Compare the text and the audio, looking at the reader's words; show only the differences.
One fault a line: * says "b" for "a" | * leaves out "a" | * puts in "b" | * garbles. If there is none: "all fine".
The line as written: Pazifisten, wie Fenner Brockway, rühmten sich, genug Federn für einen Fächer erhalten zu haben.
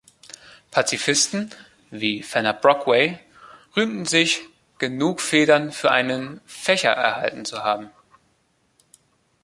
all fine